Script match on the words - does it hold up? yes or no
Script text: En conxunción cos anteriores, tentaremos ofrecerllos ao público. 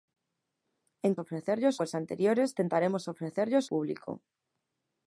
no